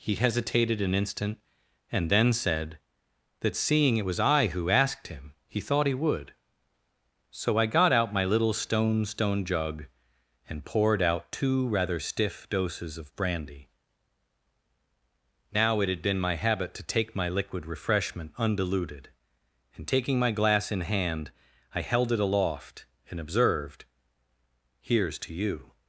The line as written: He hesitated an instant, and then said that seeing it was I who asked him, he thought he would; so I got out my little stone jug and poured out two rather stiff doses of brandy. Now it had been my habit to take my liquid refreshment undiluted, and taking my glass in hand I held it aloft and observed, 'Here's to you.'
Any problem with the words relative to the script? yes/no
yes